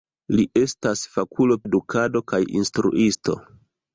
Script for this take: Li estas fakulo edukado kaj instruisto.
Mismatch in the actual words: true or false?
false